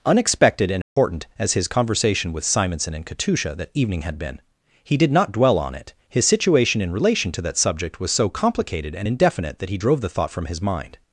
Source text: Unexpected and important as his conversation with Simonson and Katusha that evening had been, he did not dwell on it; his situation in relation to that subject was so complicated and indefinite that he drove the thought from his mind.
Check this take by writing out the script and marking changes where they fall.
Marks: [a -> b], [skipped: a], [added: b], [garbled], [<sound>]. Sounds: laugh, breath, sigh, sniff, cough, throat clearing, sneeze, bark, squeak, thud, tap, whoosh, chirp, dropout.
Unexpected and important [dropout] as his conversation with Simonson and Katusha that evening had been, he did not dwell on it; his situation in relation to that subject was so complicated and indefinite that he drove the thought from his mind.